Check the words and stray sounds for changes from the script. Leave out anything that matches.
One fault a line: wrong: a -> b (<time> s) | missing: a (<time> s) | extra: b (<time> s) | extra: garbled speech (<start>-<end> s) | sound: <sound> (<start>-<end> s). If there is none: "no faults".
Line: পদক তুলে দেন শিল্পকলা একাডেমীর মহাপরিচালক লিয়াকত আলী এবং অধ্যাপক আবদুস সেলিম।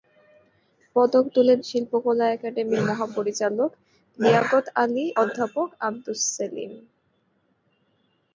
missing: দেন (1.6 s)
missing: এবং (5.1 s)